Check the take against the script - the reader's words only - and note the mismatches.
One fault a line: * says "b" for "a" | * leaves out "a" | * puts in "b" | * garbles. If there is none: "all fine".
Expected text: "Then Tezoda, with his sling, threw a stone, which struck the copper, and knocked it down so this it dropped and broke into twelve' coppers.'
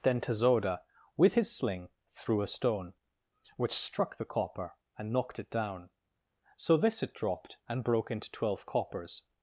all fine